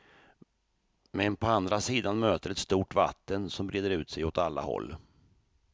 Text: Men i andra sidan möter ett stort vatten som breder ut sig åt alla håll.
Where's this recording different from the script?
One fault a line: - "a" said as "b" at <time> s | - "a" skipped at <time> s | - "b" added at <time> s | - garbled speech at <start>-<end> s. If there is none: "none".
- "i" said as "på" at 1.4 s